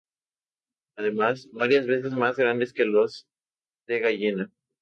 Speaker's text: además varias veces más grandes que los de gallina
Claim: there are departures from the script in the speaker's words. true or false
false